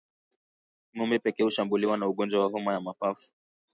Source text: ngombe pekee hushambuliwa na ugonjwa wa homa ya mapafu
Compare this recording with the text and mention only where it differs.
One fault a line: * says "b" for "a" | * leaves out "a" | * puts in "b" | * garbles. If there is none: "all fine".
all fine